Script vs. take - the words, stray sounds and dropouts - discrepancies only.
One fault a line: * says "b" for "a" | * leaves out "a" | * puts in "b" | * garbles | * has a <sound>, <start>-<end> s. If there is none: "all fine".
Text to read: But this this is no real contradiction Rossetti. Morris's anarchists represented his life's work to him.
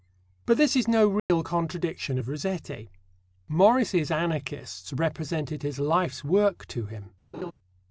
* leaves out "this"
* has a dropout, 1.2-1.3 s
* puts in "of"
* has a laugh, 7.3-7.5 s